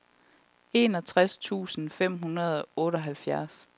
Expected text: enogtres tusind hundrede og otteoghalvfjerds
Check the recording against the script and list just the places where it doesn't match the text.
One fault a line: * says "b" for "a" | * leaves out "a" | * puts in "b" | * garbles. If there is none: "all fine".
* puts in "fem"